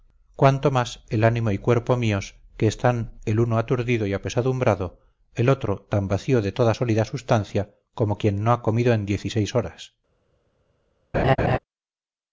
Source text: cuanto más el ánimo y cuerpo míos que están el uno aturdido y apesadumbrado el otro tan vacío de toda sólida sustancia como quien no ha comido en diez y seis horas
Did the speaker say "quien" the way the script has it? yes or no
yes